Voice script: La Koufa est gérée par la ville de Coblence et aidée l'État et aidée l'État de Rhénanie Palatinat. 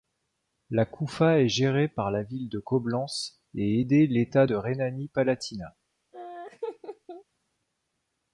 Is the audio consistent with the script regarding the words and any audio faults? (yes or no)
no